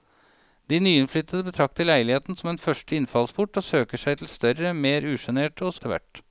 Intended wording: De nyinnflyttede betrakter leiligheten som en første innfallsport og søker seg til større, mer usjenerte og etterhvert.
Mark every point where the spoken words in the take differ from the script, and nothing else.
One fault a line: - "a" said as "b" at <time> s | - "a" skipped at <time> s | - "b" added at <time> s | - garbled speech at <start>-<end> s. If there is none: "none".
none